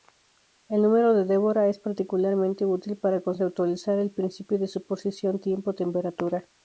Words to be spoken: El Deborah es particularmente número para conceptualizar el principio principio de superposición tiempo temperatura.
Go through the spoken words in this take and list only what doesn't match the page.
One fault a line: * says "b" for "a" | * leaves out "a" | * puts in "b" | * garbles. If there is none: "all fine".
* puts in "número de"
* says "útil" for "número"
* leaves out "principio"